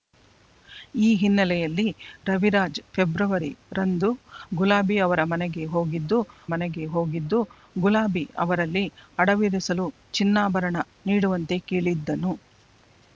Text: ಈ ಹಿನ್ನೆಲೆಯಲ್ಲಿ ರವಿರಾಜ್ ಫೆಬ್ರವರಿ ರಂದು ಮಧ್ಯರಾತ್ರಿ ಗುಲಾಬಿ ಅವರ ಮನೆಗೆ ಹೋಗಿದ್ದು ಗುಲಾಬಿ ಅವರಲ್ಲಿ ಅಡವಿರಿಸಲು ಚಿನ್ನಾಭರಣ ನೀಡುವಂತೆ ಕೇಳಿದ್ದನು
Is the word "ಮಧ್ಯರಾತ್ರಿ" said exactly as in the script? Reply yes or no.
no